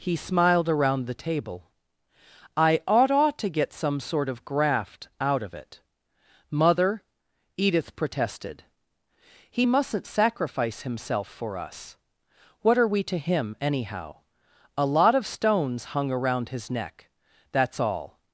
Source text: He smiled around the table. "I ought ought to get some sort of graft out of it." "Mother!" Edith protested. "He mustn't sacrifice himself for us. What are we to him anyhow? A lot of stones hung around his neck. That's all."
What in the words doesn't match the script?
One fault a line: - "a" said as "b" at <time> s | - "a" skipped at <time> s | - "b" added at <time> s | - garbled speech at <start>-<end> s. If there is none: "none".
none